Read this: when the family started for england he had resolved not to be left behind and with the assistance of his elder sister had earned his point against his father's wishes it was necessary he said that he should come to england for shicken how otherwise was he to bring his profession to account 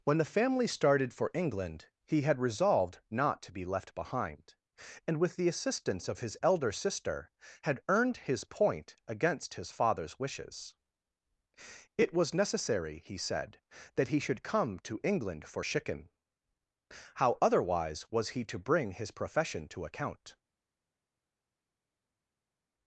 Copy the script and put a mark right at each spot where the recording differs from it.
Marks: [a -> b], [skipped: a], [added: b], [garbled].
when the family started for england he had resolved not to be left behind and with the assistance of his elder sister had earned his point against his father's wishes it was necessary he said that he should come to england for shicken how otherwise was he to bring his profession to account